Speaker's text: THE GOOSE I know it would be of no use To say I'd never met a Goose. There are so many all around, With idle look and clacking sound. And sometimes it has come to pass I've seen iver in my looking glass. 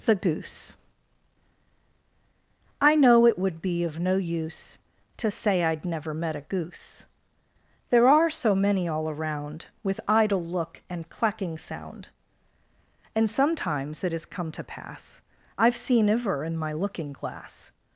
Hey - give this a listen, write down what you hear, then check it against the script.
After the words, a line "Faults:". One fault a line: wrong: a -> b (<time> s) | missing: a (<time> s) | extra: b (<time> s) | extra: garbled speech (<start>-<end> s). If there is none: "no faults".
THE GOOSE I know it would be of no use To say I'd never met a Goose. There are so many all around, With idle look and clacking sound. And sometimes it has come to pass I've seen iver in my looking glass.
Faults:
no faults